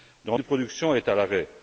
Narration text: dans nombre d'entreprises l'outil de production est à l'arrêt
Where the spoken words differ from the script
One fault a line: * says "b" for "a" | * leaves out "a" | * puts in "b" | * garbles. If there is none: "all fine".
* leaves out "nombre d'entreprises l'outil"